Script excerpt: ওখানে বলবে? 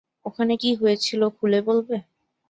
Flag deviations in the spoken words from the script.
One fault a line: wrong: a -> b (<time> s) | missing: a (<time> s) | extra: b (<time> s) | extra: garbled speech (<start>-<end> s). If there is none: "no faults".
extra: কী হয়েছিল খুলে (0.6 s)